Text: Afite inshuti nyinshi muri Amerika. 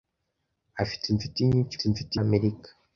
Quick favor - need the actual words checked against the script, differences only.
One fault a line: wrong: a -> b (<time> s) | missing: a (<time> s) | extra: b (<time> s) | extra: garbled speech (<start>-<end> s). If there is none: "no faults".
wrong: muri -> inshuti (1.8 s)